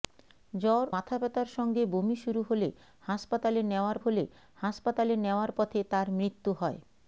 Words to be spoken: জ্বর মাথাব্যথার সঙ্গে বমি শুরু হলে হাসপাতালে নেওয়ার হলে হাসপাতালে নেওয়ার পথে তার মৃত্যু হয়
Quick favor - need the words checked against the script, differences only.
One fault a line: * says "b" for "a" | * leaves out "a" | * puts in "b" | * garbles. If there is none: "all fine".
all fine